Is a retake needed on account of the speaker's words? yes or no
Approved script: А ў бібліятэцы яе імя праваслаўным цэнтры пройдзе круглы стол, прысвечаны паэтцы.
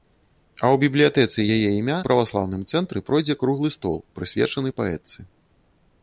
no